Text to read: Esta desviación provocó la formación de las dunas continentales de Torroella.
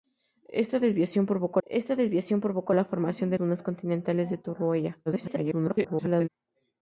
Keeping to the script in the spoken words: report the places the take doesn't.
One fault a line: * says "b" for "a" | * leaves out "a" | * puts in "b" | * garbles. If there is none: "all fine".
* puts in "esta desviación provocó"
* leaves out "las"
* garbles